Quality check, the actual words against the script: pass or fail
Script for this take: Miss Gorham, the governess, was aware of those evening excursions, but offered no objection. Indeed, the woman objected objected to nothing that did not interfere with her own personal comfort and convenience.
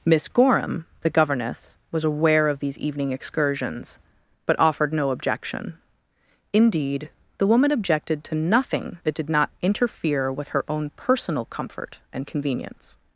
fail